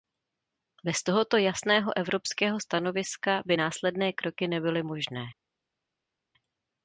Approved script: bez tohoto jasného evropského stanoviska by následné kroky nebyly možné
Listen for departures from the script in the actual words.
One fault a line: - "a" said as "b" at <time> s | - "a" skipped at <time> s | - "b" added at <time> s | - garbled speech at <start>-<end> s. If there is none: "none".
none